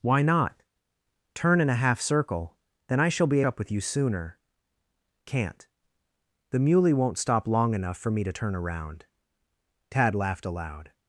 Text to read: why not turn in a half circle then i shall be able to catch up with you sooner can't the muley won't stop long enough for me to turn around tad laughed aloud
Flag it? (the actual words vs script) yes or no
yes